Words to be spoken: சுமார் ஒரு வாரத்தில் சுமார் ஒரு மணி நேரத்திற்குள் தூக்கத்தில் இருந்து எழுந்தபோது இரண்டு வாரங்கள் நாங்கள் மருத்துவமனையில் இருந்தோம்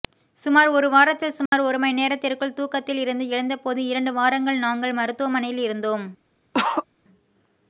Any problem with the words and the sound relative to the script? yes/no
yes